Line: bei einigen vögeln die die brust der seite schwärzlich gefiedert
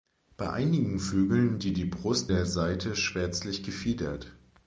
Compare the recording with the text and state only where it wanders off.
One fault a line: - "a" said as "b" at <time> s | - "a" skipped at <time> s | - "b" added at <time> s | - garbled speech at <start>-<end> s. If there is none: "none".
none